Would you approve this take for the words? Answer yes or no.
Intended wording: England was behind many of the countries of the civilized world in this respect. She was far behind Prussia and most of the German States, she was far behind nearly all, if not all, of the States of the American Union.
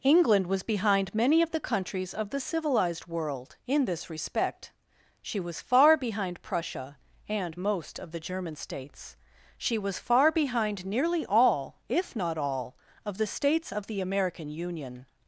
yes